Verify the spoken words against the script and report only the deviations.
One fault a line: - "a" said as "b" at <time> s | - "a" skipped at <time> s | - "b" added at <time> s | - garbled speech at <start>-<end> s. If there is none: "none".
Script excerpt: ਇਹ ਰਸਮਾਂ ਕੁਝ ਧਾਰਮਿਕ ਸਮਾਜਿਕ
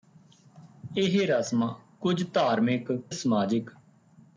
none